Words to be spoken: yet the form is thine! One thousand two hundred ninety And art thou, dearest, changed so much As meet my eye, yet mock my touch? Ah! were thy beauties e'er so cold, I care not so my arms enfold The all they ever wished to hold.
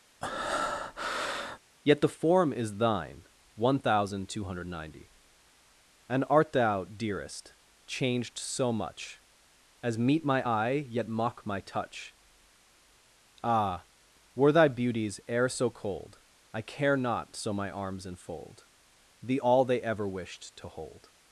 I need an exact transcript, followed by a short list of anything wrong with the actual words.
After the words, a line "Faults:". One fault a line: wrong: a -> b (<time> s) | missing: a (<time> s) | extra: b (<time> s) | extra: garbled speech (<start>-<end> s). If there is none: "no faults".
yet the form is thine! One thousand two hundred ninety And art thou, dearest, changed so much As meet my eye, yet mock my touch? Ah! were thy beauties e'er so cold, I care not so my arms enfold The all they ever wished to hold.
Faults:
no faults